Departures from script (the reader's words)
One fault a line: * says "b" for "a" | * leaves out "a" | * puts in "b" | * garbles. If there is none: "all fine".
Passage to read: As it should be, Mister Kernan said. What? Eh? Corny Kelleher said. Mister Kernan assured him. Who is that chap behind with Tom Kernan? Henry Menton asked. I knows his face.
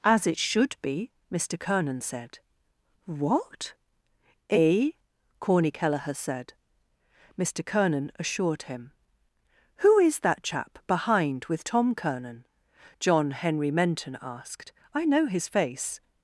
* puts in "John"
* says "know" for "knows"